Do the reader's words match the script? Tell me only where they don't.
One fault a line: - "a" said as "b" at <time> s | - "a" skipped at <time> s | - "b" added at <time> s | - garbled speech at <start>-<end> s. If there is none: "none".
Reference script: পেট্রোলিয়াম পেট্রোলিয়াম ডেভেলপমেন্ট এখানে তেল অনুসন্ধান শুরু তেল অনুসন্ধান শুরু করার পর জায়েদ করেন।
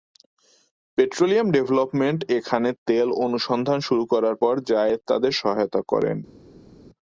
- "পেট্রোলিয়াম" skipped at 1.5 s
- "তেল অনুসন্ধান শুরু" skipped at 4.0 s
- "তাদের সহায়তা" added at 5.1 s